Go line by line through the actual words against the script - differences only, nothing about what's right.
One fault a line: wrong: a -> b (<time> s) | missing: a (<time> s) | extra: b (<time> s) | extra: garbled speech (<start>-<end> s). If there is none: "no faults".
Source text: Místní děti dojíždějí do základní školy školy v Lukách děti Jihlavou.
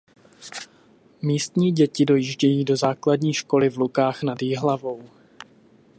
missing: školy (3.7 s)
wrong: děti -> nad (4.2 s)